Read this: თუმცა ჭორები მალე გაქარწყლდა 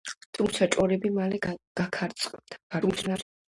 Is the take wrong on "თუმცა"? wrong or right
right